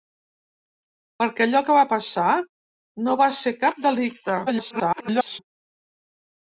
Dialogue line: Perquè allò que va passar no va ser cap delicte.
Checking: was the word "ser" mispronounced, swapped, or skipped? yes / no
no